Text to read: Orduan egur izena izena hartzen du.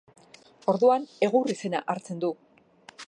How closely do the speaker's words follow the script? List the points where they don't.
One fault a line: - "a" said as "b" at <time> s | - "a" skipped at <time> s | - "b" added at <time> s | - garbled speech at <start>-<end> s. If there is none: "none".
- "izena" skipped at 1.8 s